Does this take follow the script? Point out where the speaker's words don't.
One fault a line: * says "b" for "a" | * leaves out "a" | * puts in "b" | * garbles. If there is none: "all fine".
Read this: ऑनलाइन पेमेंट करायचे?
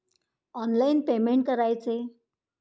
all fine